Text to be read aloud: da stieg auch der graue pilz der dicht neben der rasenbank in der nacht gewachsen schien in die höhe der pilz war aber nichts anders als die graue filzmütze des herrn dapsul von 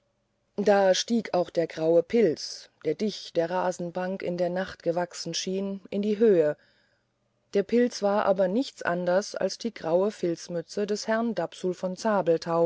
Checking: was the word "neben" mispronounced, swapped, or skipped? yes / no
yes